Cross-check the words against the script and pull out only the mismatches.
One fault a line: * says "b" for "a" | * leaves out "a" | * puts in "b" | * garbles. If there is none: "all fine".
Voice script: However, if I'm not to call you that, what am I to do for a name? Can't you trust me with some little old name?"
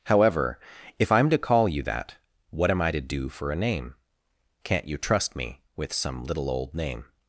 * leaves out "not"